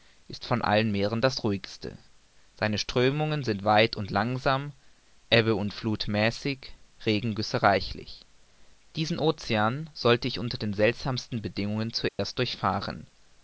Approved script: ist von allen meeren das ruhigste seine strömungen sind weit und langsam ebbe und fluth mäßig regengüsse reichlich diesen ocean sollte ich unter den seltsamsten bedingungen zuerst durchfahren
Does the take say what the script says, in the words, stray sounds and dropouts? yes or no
no